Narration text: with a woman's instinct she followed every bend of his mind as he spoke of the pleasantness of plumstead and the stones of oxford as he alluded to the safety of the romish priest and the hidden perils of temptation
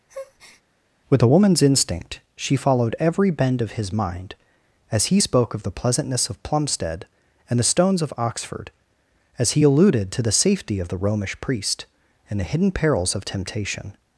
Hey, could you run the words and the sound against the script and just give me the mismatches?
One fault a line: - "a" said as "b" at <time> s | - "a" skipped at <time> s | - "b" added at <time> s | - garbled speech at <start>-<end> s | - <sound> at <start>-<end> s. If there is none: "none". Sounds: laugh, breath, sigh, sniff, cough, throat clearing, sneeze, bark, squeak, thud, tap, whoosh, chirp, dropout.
- breath at 0.1-0.6 s